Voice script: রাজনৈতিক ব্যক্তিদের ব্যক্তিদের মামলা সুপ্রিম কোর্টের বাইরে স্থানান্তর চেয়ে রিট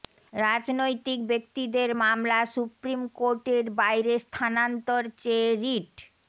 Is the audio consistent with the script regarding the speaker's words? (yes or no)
no